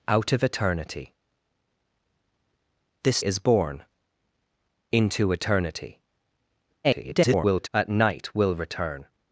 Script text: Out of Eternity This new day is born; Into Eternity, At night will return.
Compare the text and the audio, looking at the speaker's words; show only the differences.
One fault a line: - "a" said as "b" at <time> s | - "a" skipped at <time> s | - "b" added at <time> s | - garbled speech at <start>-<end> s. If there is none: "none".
- "new day" skipped at 3.2 s
- garbled speech at 6.8-7.7 s